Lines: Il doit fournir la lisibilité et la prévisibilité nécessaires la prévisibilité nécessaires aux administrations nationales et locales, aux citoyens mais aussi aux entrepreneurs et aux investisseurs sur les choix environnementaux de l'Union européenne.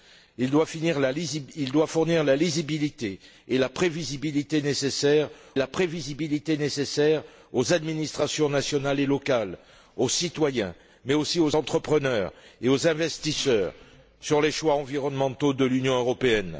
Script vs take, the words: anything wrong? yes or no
no